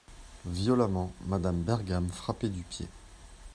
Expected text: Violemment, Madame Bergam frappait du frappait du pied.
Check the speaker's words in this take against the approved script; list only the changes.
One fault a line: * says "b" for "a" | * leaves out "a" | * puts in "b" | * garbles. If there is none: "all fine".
* leaves out "frappait du"